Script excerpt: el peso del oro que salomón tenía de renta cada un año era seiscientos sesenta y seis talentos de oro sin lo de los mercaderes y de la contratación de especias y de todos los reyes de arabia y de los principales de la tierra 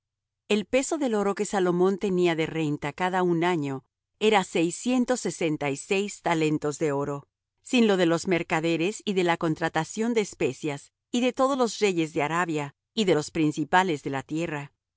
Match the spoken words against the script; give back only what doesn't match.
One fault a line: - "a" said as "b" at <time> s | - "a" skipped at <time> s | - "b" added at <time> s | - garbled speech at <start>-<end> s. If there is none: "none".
none